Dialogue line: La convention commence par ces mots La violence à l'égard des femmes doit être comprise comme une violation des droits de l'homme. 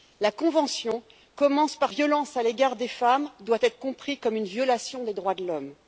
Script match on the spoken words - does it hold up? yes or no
no